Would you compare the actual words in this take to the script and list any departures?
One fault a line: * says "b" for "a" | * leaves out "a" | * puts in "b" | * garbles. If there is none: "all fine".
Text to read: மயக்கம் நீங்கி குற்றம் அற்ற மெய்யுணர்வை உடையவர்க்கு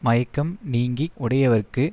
* leaves out "குற்றம் அற்ற மெய்யுணர்வை"